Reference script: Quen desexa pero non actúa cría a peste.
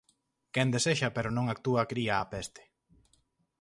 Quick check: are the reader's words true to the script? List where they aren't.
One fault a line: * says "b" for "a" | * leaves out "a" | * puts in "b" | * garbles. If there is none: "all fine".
all fine